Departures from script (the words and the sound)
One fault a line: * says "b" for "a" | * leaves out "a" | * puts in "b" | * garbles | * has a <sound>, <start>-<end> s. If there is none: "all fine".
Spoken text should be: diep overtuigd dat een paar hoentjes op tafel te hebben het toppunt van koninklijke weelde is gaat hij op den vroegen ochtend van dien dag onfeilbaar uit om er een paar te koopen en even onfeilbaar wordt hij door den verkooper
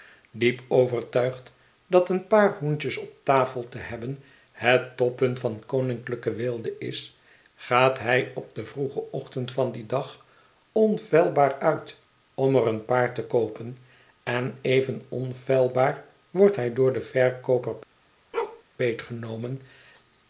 * has a bark, 18.3-18.6 s